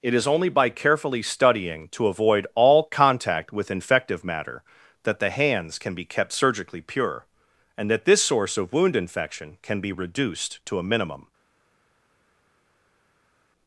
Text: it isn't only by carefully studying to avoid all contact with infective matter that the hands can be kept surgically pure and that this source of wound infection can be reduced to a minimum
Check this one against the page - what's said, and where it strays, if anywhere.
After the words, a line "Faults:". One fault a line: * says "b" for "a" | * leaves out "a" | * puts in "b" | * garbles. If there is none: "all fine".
it is only by carefully studying to avoid all contact with infective matter that the hands can be kept surgically pure and that this source of wound infection can be reduced to a minimum
Faults:
* says "is" for "isn't"